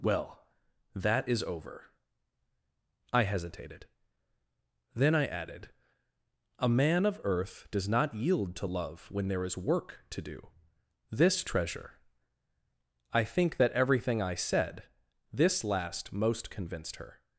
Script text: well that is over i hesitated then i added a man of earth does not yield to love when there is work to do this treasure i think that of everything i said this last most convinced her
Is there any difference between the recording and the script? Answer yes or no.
yes